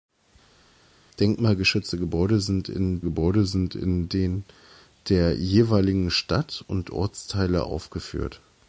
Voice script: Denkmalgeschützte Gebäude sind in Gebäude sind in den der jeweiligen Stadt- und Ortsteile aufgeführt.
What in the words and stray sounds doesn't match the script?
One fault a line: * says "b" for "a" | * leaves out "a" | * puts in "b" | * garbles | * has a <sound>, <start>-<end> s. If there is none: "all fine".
all fine